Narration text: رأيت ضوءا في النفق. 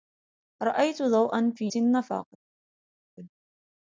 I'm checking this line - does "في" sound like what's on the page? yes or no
yes